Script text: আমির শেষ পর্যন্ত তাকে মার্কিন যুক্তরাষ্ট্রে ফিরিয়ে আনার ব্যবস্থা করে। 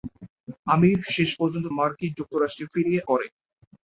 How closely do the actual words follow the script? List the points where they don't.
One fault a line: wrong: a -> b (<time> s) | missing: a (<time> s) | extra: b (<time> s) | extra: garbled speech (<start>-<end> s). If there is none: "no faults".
missing: তাকে (1.6 s)
missing: আনার ব্যবস্থা (3.0 s)